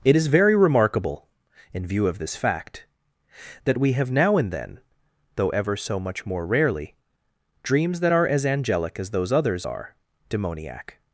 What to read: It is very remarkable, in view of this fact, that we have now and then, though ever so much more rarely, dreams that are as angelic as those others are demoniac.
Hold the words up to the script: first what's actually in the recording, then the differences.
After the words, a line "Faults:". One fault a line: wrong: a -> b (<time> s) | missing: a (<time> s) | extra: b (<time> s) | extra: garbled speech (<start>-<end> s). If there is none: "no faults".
It is very remarkable, in view of this fact, that we have now and then, though ever so much more rarely, dreams that are as angelic as those others are demoniac.
Faults:
no faults